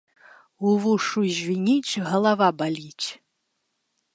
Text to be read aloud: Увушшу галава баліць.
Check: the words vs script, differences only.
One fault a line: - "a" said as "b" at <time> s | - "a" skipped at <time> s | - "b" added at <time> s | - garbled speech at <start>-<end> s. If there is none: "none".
- "звініць" added at 1.4 s